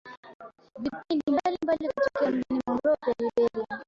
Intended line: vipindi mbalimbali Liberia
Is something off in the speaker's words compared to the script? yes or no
yes